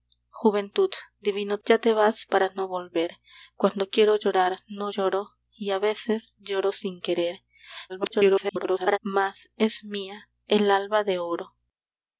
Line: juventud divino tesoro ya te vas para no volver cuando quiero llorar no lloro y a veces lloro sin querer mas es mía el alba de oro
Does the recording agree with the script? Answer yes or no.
no